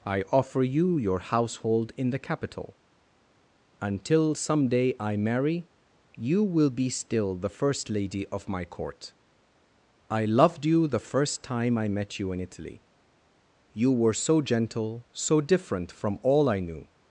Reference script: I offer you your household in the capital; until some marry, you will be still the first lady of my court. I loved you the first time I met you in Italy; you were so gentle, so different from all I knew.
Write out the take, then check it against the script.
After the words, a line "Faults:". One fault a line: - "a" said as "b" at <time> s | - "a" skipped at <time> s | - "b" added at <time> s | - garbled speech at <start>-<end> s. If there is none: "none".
I offer you your household in the capital; until some day I marry, you will be still the first lady of my court. I loved you the first time I met you in Italy; you were so gentle, so different from all I knew.
Faults:
- "day I" added at 4.7 s